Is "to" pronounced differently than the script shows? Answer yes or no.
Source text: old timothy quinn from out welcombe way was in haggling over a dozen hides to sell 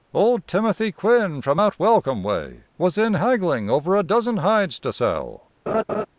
no